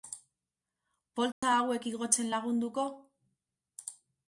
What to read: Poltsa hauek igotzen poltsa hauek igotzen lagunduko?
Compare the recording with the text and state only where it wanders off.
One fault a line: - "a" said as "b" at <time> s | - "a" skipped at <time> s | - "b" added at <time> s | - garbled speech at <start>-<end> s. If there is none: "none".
- "poltsa hauek igotzen" skipped at 2.3 s